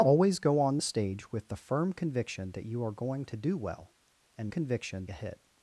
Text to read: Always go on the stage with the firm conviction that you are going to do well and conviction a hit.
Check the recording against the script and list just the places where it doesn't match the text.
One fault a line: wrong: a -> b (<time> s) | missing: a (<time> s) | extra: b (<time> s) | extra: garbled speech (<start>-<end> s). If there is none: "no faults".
no faults